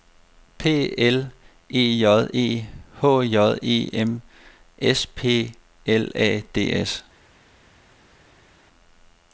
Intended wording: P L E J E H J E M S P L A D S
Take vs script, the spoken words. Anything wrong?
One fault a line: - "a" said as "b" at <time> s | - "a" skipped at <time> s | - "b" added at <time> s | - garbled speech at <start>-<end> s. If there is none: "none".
none